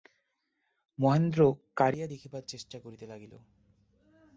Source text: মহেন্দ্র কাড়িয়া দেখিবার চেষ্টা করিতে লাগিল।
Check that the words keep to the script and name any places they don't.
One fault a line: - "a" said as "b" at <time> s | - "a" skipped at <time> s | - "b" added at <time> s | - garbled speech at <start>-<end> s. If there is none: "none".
none